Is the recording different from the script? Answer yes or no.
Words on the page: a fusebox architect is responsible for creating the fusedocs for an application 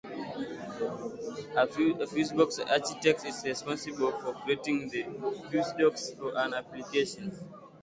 no